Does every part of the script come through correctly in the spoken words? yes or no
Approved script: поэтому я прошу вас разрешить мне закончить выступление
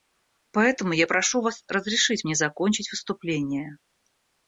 yes